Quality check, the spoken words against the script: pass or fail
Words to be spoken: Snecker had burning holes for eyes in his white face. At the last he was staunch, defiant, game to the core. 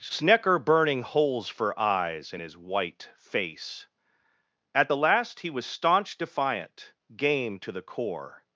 fail